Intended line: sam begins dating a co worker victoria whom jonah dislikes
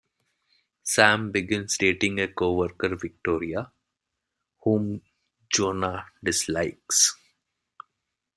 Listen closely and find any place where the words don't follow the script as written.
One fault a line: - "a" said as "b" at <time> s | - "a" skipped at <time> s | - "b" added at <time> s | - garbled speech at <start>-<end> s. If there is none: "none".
none